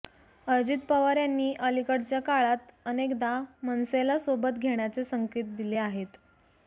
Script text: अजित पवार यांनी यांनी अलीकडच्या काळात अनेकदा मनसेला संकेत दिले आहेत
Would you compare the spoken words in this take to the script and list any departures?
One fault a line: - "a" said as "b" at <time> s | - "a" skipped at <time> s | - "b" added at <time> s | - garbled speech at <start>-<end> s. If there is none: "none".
- "यांनी" skipped at 1.5 s
- "सोबत घेण्याचे" added at 4.2 s